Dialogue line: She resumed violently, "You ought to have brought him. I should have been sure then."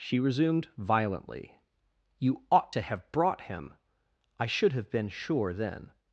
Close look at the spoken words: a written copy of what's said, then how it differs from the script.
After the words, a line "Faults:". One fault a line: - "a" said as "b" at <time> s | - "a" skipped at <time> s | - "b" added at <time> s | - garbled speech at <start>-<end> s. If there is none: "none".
She resumed violently, "You ought to have brought him. I should have been sure then."
Faults:
none